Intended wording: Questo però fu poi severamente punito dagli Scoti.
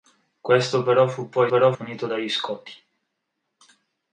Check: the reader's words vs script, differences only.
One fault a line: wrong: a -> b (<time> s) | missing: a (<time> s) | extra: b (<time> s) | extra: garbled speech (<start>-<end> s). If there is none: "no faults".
wrong: severamente -> però (1.5 s)